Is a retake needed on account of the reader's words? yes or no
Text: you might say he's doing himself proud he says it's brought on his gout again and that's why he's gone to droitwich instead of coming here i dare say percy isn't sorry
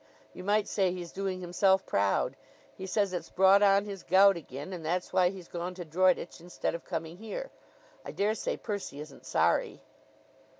no